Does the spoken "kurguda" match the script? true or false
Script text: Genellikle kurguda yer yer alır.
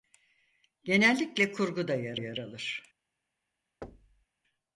true